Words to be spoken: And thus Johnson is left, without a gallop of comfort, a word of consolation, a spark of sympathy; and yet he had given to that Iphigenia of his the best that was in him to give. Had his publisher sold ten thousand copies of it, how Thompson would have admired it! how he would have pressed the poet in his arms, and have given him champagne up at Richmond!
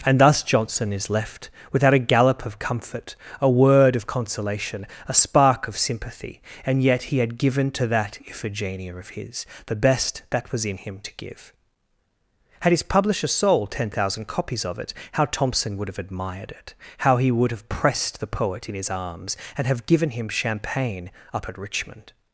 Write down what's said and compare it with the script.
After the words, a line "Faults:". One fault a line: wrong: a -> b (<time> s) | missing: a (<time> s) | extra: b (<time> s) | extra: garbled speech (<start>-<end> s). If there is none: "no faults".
And thus Johnson is left, without a gallop of comfort, a word of consolation, a spark of sympathy; and yet he had given to that Iphigenia of his the best that was in him to give. Had his publisher sold ten thousand copies of it, how Thompson would have admired it! how he would have pressed the poet in his arms, and have given him champagne up at Richmond!
Faults:
no faults